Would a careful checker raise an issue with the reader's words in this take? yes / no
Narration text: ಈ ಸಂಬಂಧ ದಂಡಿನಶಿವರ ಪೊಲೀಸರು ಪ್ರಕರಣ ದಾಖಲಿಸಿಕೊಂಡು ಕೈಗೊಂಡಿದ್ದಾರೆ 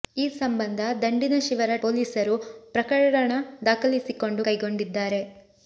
no